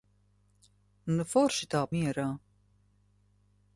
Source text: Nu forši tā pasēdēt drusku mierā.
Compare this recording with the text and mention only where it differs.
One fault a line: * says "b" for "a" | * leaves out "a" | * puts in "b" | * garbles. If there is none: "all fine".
* leaves out "pasēdēt drusku"